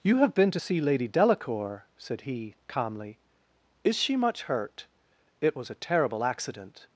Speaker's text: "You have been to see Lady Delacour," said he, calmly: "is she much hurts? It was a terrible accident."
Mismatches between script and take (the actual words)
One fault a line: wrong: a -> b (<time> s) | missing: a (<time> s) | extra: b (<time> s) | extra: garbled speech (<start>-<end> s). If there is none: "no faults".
wrong: hurts -> hurt (4.4 s)